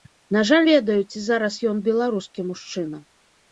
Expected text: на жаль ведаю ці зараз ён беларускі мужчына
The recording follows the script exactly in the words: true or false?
true